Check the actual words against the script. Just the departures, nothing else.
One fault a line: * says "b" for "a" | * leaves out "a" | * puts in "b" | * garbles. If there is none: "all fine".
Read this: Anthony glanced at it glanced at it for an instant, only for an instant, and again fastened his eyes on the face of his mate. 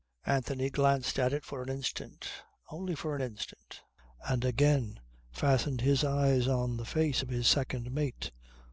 * leaves out "glanced at it"
* puts in "second"